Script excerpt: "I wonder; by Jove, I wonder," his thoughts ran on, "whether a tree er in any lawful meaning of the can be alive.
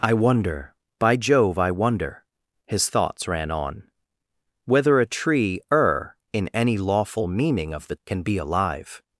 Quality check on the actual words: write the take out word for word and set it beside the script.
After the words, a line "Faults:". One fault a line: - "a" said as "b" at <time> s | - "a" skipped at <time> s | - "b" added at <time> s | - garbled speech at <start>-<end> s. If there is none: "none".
"I wonder; by Jove, I wonder," his thoughts ran on, "whether a tree er in any lawful meaning of the can be alive.
Faults:
none